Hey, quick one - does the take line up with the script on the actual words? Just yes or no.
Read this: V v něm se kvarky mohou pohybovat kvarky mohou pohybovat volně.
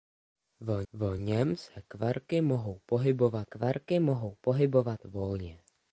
yes